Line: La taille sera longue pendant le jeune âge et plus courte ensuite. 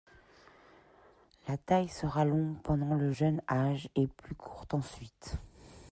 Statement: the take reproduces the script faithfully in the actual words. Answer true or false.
true